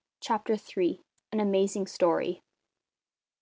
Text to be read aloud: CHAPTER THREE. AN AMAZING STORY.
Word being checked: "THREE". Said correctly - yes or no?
yes